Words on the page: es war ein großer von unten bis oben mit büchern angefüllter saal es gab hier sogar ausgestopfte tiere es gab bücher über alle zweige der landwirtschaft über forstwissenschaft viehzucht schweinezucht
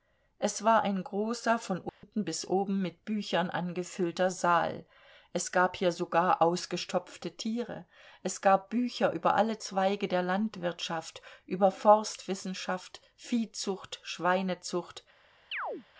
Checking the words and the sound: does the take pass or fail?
fail